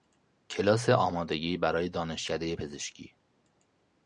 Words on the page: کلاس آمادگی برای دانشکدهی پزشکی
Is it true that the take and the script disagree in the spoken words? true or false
false